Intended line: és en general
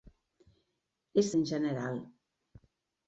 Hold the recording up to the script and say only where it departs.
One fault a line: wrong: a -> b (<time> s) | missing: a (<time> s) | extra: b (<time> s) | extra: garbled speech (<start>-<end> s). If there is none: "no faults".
no faults